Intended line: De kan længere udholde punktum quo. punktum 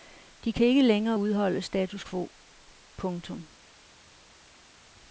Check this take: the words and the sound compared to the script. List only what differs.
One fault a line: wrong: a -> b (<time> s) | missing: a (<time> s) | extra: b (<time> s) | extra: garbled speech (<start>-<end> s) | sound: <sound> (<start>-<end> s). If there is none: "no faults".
extra: ikke (0.7 s)
wrong: punktum -> status (1.6 s)